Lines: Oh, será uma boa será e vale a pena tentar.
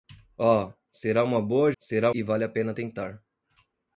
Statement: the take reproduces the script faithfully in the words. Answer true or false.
true